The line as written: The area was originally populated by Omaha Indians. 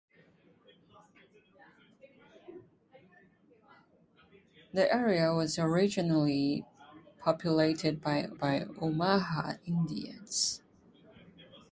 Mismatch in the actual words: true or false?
true